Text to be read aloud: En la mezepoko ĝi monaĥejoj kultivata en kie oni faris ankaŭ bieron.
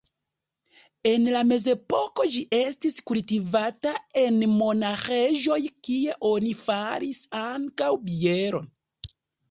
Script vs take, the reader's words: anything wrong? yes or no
yes